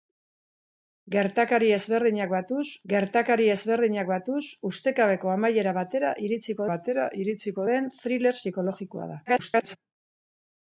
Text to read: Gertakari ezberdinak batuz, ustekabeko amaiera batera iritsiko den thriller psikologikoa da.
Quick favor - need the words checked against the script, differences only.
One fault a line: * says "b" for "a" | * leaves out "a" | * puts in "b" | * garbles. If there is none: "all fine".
* puts in "gertakari ezberdinak batuz"
* puts in "batera iritsiko"
* garbles